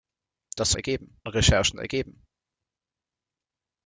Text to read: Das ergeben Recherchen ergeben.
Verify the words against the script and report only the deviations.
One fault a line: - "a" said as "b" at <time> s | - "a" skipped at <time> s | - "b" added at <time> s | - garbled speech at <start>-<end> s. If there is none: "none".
none